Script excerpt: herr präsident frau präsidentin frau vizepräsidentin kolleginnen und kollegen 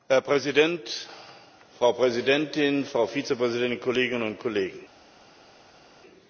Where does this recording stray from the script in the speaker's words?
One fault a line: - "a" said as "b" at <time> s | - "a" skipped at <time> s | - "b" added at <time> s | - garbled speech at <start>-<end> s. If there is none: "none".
none